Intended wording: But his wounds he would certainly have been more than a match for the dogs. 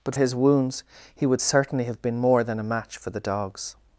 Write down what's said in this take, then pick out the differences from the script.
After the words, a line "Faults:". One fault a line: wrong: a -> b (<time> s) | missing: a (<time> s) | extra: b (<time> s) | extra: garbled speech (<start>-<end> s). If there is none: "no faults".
But his wounds he would certainly have been more than a match for the dogs.
Faults:
no faults